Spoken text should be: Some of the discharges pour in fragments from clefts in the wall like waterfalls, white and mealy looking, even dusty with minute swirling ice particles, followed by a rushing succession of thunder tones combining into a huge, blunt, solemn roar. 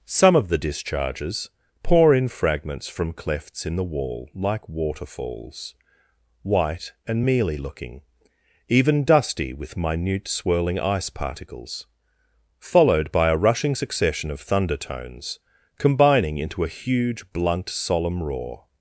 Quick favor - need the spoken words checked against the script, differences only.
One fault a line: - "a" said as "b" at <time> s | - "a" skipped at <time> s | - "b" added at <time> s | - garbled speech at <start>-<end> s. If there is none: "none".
none